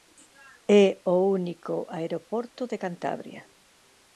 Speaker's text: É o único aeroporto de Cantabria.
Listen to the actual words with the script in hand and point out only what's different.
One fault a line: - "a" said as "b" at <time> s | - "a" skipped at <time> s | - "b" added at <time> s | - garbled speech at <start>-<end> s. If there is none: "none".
none